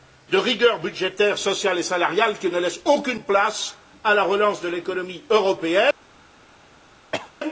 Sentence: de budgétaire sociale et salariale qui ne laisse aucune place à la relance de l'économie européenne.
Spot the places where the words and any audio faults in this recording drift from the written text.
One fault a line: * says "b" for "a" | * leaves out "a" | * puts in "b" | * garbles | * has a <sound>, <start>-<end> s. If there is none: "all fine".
* puts in "rigueur"
* has a cough, 7.1-7.3 s